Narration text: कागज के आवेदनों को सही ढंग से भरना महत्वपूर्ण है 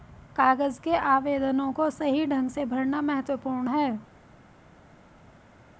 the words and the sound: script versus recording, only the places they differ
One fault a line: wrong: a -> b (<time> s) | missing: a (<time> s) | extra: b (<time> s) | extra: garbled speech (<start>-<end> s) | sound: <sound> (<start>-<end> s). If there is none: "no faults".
no faults